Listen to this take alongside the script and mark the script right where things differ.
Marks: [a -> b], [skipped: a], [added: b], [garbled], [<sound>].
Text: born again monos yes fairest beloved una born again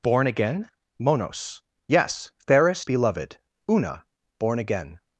born again monos yes fairest beloved una born again